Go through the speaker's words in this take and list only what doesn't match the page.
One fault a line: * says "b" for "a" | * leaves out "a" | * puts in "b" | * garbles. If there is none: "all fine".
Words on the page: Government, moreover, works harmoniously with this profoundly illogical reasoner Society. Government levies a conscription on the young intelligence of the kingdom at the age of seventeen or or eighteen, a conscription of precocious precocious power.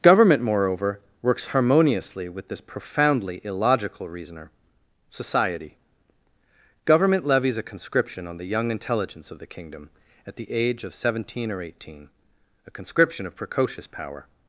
* leaves out "or"
* leaves out "precocious"